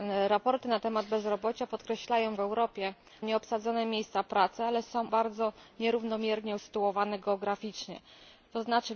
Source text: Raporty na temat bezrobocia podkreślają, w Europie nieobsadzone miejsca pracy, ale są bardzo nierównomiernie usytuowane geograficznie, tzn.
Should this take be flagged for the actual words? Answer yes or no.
no